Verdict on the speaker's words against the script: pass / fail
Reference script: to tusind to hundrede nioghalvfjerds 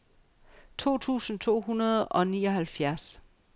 fail